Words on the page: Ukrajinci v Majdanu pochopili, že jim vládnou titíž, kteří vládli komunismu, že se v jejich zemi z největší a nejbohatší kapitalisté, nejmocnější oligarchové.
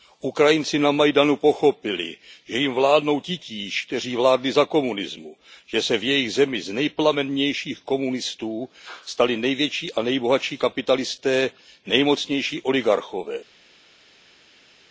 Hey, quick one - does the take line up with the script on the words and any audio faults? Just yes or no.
no